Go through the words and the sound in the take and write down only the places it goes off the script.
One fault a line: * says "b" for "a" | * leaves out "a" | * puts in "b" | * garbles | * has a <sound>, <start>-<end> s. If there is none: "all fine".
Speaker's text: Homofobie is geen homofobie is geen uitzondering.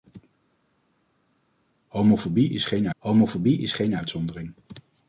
all fine